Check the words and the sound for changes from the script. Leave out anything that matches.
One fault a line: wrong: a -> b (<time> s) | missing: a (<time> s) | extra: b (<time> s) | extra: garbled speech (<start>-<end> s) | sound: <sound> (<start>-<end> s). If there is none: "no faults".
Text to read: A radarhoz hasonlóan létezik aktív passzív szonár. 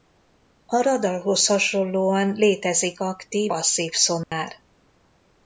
sound: dropout (4.2-4.3 s)